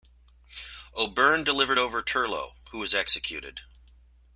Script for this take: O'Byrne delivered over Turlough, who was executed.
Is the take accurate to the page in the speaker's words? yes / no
yes